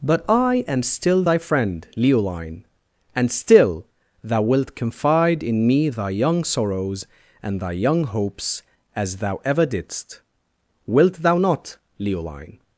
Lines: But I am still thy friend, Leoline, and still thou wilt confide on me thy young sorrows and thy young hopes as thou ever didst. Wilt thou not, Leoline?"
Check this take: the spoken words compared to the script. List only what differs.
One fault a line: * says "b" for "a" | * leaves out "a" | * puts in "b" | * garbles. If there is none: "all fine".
* says "in" for "on"